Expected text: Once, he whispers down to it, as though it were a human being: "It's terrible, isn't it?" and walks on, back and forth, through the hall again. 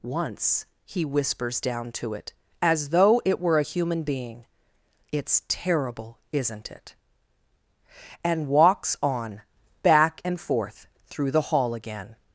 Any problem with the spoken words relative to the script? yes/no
no